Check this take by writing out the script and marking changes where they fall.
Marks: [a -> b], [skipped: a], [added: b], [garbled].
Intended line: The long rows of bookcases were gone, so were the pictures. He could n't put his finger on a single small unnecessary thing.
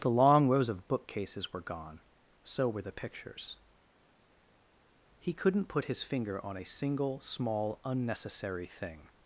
The long rows of bookcases were gone, so were the pictures. He could n't put his finger on a single small unnecessary thing.